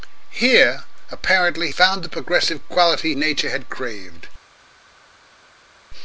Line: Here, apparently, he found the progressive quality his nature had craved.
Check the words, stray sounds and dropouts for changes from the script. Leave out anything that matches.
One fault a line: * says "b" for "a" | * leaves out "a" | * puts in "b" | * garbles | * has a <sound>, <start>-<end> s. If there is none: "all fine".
* leaves out "he"
* leaves out "his"